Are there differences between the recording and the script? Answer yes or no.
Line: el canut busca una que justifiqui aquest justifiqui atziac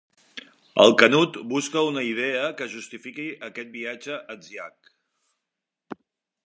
yes